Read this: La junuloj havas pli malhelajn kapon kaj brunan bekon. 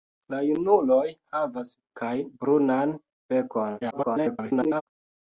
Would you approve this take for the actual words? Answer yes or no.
no